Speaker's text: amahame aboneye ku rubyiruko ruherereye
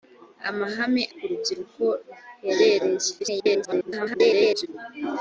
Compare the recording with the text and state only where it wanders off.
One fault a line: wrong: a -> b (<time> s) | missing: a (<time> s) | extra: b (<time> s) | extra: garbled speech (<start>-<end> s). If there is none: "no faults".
missing: aboneye (1.0 s)
extra: garbled speech (3.2-4.7 s)